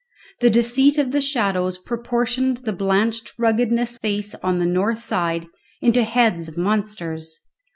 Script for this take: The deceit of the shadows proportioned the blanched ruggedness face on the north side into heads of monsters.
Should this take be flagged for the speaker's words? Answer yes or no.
no